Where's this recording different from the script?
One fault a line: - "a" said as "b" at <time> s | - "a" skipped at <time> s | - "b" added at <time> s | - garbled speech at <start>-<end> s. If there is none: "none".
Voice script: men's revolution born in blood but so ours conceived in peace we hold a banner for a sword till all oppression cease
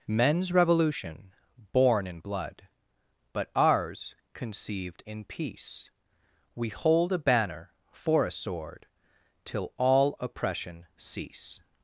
- "so" skipped at 3.5 s